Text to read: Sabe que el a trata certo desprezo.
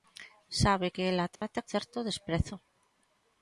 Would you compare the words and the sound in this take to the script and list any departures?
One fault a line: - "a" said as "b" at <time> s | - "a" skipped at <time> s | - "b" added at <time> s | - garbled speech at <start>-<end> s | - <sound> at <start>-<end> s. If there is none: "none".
- dropout at 1.4-1.4 s